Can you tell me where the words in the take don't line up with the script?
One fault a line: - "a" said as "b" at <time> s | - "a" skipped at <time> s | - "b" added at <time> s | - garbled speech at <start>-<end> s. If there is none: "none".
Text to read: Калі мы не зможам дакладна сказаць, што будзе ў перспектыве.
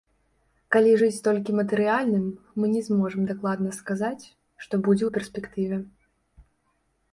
- "жыць толькі матэрыяльным" added at 1.0 s